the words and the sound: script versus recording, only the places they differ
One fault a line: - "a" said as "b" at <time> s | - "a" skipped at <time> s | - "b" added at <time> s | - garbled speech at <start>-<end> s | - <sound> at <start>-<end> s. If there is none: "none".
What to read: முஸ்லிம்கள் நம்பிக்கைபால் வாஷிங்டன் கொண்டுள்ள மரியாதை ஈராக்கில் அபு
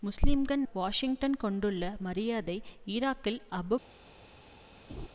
- "நம்பிக்கைபால்" skipped at 0.6 s
- laugh at 4.9-5.1 s